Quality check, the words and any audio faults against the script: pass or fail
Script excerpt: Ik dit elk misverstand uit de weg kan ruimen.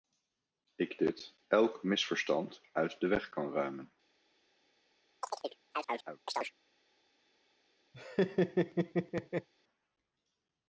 fail